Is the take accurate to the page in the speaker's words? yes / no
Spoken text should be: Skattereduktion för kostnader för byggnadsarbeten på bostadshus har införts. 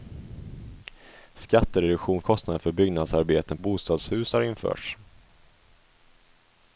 no